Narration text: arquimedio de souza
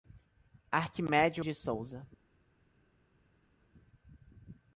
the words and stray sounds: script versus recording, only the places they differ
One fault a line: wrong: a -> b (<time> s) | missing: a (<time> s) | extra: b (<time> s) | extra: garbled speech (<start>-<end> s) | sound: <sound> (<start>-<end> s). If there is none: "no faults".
no faults